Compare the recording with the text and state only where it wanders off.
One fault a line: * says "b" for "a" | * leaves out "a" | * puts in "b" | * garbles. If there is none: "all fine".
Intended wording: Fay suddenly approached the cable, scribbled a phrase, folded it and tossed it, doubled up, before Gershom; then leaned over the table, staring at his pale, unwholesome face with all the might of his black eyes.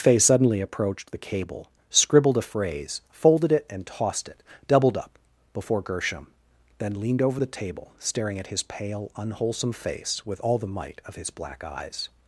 all fine